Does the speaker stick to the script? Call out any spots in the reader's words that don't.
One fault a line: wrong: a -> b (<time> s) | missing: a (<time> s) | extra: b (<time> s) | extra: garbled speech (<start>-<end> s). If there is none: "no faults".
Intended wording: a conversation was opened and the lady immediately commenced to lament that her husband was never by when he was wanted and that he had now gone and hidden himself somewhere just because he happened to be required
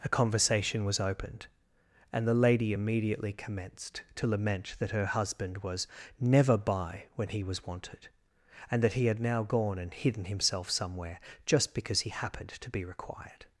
no faults